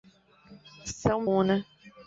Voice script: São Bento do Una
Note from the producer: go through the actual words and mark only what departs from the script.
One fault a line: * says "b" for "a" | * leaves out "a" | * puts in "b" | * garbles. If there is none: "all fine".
* leaves out "Bento do"